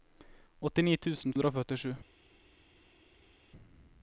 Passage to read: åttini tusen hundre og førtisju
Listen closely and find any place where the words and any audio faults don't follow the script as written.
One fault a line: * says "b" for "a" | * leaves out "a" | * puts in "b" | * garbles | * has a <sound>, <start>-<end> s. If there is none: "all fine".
all fine